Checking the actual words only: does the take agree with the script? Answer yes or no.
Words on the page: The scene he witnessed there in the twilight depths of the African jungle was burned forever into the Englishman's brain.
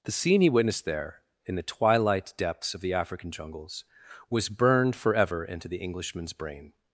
no